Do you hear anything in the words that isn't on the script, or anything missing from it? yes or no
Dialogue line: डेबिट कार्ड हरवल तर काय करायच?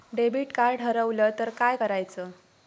no